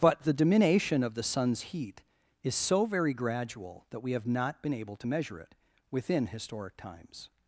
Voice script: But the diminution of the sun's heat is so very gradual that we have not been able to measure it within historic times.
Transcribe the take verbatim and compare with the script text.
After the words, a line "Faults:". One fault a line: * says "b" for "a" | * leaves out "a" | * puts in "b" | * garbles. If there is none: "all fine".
But the diminution of the sun's heat is so very gradual that we have not been able to measure it within historic times.
Faults:
all fine